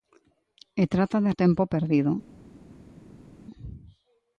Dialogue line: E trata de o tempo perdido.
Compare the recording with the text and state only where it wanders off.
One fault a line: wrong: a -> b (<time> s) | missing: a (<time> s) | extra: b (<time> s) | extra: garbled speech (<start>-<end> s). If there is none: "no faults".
no faults